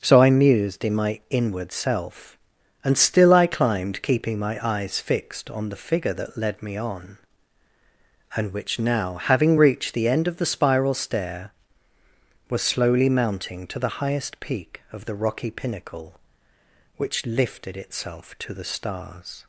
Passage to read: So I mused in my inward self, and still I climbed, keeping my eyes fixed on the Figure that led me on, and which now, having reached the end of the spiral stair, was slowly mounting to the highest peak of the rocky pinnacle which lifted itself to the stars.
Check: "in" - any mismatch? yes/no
no